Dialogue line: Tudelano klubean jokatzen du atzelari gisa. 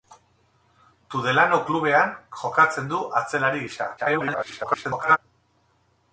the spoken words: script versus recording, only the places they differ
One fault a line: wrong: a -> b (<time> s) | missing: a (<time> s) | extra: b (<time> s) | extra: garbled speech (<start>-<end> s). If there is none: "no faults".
extra: garbled speech (4.0-5.2 s)